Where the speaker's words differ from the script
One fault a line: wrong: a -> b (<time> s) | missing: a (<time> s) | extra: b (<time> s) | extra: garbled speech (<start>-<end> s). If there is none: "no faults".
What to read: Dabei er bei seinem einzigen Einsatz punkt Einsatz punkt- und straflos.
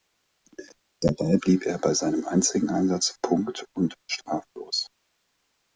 extra: blieb (1.4 s)
missing: Einsatz punkt (3.7 s)